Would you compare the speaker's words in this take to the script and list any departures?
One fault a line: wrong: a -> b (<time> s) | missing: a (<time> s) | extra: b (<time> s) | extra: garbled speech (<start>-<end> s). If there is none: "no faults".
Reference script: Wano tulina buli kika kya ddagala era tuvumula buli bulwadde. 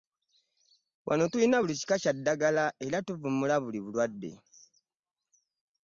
no faults